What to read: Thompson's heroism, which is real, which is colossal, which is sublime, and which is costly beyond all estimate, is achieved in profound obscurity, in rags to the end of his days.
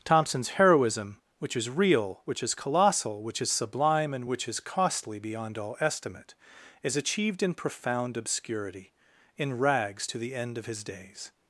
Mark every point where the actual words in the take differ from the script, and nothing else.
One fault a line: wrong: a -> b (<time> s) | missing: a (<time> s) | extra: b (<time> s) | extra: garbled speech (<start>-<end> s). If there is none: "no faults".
no faults